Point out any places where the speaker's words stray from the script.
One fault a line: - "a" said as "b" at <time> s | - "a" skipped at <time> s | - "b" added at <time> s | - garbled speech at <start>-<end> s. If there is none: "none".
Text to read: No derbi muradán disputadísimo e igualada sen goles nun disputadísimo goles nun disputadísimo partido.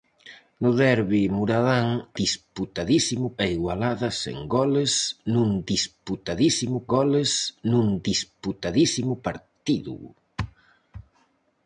none